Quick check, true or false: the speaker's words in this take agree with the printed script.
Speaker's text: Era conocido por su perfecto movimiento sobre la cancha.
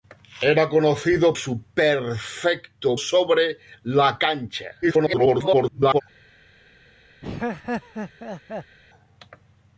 false